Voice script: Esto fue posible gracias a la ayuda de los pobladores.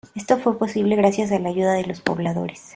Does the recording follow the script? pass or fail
pass